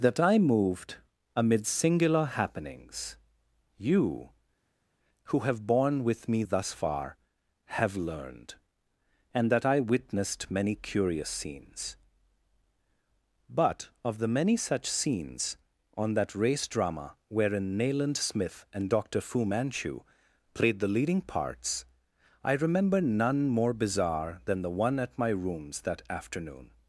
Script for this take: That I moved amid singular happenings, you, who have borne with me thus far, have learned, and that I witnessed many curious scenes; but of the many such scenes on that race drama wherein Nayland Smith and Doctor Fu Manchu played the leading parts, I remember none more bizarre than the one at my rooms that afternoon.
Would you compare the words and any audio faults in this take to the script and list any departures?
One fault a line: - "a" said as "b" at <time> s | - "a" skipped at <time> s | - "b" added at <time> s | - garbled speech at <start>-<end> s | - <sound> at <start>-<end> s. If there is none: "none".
none